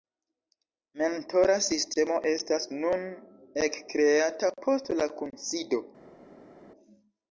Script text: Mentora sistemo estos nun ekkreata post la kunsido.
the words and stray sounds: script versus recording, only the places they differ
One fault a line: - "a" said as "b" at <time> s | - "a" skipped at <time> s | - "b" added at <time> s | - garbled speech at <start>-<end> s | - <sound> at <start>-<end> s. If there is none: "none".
- "estos" said as "estas" at 2.3 s